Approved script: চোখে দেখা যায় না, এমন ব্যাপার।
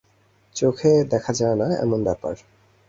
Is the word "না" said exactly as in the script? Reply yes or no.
yes